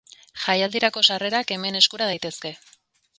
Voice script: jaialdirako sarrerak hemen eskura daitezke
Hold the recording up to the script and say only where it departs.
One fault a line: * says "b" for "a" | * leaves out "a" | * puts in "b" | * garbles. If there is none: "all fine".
all fine